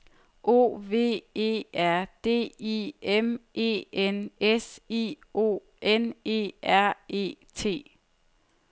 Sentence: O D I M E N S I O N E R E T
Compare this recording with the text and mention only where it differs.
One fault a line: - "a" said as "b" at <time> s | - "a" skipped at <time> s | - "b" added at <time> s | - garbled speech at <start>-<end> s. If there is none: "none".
- "V E R" added at 0.8 s